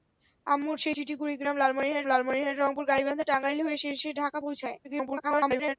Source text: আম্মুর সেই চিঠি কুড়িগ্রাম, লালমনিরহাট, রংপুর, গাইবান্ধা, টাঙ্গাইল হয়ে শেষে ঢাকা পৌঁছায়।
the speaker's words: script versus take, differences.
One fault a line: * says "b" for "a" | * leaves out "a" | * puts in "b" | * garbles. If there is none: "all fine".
* puts in "লালমনিরহাট"
* garbles